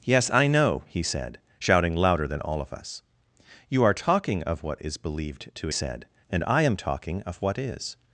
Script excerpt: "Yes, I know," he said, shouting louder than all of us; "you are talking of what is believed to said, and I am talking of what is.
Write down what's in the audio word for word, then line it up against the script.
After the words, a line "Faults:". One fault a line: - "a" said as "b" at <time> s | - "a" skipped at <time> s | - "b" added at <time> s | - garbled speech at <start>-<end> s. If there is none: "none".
"Yes, I know," he said, shouting louder than all of us; "you are talking of what is believed to said, and I am talking of what is.
Faults:
none